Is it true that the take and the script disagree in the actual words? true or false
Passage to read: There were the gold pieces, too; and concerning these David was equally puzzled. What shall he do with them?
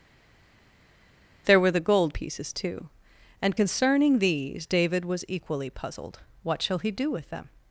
false